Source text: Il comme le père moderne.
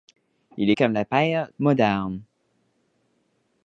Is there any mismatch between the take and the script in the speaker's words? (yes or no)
no